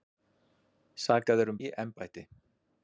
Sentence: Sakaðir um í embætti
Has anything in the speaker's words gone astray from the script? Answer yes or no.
no